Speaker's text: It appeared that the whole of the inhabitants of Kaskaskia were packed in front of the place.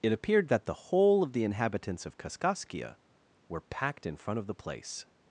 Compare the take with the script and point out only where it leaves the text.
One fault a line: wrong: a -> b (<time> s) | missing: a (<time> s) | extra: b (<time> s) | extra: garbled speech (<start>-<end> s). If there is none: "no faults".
no faults